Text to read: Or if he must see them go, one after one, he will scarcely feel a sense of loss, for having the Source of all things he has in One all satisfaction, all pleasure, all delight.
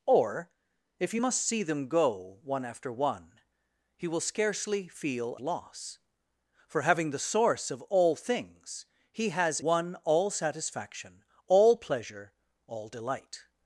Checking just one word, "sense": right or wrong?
wrong